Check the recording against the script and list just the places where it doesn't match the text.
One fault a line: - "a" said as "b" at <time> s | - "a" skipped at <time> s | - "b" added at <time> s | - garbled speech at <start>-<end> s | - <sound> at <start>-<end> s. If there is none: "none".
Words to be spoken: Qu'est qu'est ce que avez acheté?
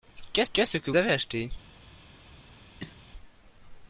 - cough at 2.8-3.0 s